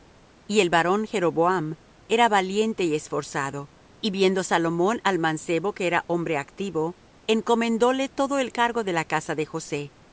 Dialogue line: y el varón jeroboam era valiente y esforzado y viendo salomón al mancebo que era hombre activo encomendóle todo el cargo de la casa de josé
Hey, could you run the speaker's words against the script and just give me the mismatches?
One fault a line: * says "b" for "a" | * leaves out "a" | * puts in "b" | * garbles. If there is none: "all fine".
all fine